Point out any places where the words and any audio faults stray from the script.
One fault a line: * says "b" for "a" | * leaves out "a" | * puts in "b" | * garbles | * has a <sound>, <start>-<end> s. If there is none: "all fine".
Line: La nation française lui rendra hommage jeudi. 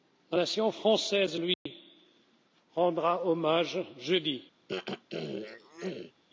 * has a dropout, 1.5-1.7 s
* has a throat clearing, 4.7-6.1 s